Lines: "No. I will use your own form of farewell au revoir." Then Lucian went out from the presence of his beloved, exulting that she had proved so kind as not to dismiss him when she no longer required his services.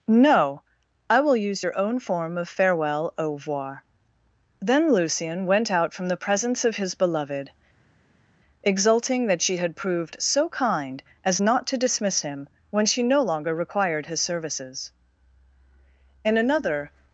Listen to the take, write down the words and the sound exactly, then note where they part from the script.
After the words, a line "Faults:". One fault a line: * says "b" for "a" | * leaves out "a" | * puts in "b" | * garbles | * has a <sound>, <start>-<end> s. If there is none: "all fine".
"No. I will use your own form of farewell au revoir." Then Lucian went out from the presence of his beloved, exulting that she had proved so kind as not to dismiss him when she no longer required his services. In another
Faults:
* puts in "In another"